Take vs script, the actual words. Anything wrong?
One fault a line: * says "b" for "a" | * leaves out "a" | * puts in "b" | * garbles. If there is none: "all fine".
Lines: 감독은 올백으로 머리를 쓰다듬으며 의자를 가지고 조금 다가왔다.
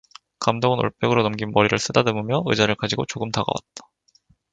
* puts in "넘긴"